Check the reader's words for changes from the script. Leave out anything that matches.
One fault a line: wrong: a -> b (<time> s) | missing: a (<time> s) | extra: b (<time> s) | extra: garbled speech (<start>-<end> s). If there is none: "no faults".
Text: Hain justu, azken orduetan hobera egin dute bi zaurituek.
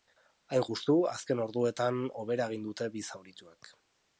no faults